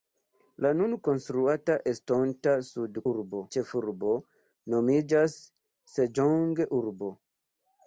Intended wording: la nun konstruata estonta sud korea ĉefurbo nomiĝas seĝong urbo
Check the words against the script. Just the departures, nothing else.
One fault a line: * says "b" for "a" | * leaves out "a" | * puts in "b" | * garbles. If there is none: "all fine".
* says "urbo" for "korea"